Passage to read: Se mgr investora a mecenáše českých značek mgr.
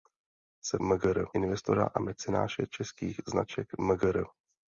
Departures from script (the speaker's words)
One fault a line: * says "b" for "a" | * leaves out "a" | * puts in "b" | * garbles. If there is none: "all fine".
all fine